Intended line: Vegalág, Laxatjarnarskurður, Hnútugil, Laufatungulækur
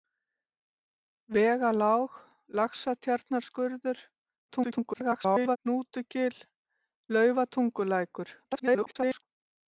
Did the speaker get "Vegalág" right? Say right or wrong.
right